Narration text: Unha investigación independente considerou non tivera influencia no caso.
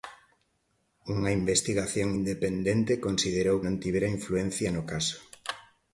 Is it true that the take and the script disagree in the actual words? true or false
false